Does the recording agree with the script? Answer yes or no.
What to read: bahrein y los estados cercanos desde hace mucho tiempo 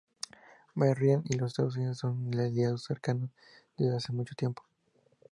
no